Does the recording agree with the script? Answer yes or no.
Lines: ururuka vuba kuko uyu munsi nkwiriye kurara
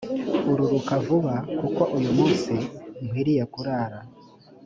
yes